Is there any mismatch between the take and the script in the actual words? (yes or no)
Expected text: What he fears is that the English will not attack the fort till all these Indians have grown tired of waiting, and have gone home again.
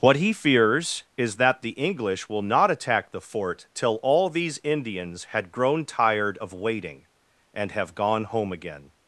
yes